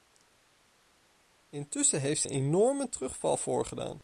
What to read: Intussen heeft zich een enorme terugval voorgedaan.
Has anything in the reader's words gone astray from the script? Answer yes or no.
yes